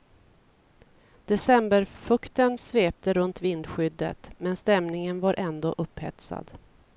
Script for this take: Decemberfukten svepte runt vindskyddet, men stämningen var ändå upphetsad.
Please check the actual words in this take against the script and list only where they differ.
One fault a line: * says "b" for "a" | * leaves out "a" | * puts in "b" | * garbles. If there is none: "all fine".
all fine